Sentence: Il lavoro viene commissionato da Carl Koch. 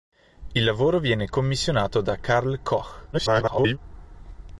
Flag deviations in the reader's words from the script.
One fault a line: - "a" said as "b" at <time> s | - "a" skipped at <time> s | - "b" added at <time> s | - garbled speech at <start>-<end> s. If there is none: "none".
- garbled speech at 3.1-3.8 s